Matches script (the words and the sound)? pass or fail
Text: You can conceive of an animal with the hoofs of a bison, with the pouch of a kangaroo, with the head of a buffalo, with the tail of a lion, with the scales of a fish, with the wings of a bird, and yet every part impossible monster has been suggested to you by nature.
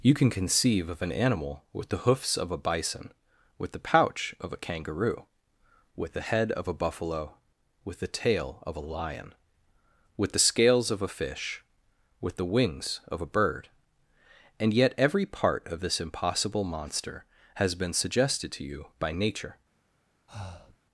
fail